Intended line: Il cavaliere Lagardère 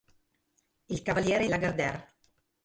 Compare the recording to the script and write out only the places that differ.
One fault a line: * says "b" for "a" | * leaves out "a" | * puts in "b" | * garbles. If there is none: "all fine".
all fine